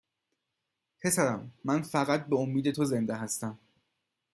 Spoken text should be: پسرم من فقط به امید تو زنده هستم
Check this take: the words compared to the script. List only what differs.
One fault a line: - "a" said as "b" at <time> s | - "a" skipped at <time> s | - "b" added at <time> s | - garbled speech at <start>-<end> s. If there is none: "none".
none